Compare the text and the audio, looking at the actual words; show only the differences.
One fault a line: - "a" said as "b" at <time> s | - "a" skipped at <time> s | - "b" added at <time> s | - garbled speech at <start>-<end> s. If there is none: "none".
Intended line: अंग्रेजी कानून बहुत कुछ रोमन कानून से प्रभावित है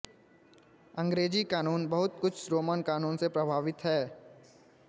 none